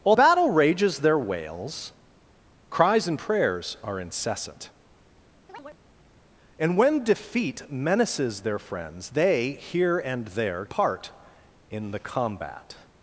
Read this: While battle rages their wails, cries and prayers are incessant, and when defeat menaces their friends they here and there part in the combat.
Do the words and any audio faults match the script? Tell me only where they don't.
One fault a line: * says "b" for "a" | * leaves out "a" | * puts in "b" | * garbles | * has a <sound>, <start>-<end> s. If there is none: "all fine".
* has a chirp, 5.5-5.8 s